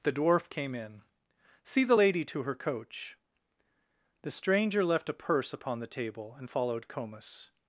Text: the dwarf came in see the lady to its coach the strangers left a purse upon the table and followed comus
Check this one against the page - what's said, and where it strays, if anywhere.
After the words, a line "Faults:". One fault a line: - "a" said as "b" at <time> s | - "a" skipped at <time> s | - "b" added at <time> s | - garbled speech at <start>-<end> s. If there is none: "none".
the dwarf came in see the lady to her coach the stranger left a purse upon the table and followed comus
Faults:
- "its" said as "her" at 2.4 s
- "strangers" said as "stranger" at 4.3 s